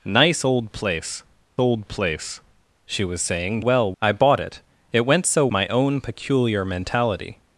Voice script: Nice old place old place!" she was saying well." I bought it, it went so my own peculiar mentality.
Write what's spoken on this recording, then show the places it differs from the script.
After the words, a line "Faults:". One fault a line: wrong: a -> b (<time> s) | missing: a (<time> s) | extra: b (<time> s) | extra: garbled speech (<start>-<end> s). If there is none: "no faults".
Nice old place old place!" she was saying well." I bought it, it went so my own peculiar mentality.
Faults:
no faults